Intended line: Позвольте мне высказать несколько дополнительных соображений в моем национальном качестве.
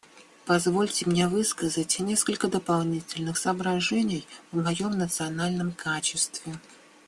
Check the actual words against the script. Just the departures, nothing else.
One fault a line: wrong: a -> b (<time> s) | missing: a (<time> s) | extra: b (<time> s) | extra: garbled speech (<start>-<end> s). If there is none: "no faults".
no faults